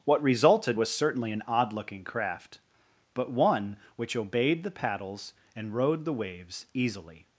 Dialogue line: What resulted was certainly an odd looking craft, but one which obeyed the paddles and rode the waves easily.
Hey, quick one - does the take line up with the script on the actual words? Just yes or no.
yes